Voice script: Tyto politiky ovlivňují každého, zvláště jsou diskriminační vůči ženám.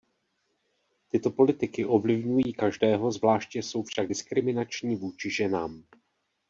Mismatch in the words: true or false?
true